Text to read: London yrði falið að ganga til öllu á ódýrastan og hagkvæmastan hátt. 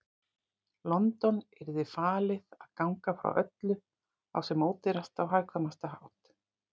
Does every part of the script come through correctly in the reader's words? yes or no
no